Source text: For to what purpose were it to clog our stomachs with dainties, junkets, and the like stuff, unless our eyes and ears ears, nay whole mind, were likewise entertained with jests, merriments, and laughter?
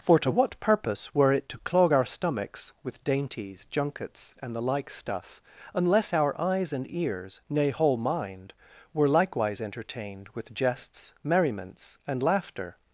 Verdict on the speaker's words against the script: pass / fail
fail